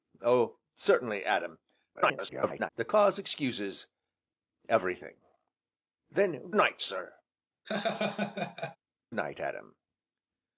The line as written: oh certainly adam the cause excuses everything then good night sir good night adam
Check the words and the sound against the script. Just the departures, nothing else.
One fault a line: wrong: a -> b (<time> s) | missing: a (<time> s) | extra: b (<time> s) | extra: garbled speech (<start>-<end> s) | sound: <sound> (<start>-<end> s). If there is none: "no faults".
extra: garbled speech (1.9-2.7 s)
missing: good (6.5 s)
missing: good (7.2 s)
sound: laugh (7.6-8.8 s)